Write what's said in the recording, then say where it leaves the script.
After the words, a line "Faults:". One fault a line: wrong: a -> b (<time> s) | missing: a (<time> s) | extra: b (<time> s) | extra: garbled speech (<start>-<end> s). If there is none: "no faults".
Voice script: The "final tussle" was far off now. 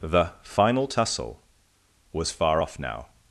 The "final tussle" was far off now.
Faults:
no faults